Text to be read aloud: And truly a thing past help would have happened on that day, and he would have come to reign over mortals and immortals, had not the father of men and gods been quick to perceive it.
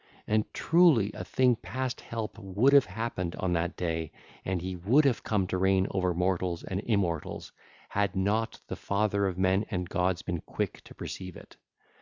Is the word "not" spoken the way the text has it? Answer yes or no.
yes